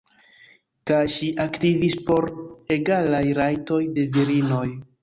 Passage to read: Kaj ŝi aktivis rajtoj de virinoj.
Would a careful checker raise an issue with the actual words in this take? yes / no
yes